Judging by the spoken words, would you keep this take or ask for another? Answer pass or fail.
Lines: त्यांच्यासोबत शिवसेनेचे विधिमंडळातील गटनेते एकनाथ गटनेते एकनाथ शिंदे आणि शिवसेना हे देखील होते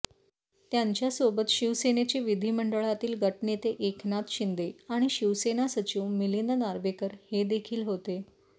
fail